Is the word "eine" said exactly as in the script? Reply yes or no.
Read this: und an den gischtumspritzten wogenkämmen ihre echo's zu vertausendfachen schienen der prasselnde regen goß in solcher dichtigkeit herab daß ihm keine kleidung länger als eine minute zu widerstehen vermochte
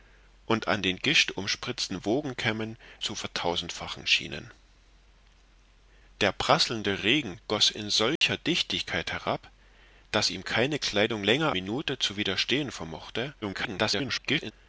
no